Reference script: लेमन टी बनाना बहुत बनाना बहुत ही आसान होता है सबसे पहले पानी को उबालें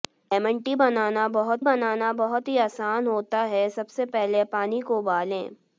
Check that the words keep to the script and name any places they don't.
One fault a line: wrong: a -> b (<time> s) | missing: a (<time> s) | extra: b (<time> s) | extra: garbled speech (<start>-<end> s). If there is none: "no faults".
no faults